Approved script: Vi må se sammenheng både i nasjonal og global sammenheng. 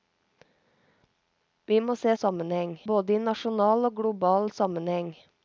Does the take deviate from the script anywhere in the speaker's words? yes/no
no